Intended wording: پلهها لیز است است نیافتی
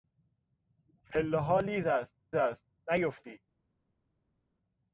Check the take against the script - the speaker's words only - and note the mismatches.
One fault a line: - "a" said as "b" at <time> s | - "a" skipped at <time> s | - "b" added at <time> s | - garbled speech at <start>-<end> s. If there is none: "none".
none